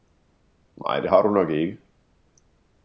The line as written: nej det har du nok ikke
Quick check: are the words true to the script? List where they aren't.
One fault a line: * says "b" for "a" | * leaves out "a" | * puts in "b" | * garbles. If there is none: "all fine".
all fine